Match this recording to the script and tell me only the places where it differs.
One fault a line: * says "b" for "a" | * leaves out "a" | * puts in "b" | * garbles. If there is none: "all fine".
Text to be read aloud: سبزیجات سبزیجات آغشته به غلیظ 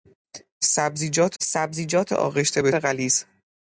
all fine